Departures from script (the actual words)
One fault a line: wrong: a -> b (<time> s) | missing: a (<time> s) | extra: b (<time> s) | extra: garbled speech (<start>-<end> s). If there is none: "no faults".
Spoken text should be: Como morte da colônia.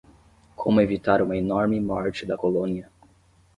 extra: evitar uma enorme (0.8 s)